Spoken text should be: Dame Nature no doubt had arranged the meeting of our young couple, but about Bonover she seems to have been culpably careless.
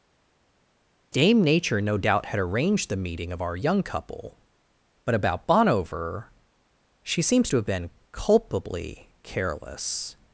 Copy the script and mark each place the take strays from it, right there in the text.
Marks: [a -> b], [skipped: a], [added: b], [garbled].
Dame Nature no doubt had arranged the meeting of our young couple, but about Bonover she seems to have been culpably careless.